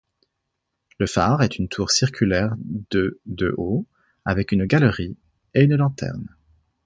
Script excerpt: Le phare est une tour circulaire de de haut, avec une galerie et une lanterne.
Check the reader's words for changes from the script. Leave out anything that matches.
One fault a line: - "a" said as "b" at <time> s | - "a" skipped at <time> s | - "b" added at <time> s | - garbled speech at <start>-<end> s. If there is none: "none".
none